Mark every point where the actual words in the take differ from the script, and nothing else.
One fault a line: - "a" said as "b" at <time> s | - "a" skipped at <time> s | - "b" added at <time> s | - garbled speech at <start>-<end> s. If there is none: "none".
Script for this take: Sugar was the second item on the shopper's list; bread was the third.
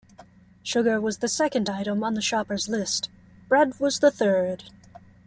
none